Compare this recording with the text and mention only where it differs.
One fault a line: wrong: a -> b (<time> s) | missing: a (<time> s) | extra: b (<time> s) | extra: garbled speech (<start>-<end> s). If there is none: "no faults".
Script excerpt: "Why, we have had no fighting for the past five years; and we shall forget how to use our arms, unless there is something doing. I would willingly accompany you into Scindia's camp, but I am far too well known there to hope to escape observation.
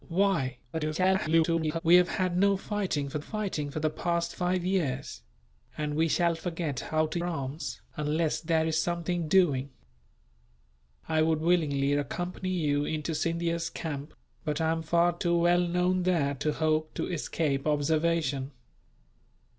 extra: garbled speech (0.7-1.8 s)
extra: fighting for (3.2 s)
missing: use our (7.2 s)